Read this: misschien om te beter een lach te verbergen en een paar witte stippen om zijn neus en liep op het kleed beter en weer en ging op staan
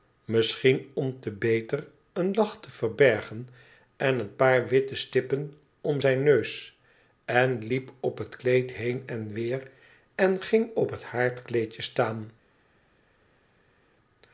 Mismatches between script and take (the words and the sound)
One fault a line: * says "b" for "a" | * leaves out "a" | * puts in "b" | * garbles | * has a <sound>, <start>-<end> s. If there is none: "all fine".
* says "heen" for "beter"
* puts in "het haardkleedje"